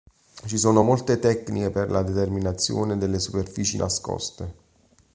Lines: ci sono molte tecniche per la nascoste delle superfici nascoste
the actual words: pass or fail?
fail